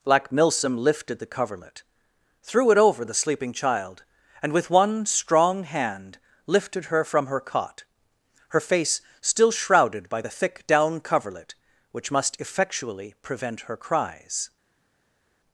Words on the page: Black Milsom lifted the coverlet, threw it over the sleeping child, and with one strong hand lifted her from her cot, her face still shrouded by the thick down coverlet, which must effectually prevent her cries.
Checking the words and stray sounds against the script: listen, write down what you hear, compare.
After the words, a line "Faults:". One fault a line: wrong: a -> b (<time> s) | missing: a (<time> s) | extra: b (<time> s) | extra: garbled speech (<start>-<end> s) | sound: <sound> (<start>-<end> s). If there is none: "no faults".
Black Milsom lifted the coverlet, threw it over the sleeping child, and with one strong hand lifted her from her cot, her face still shrouded by the thick down coverlet, which must effectually prevent her cries.
Faults:
no faults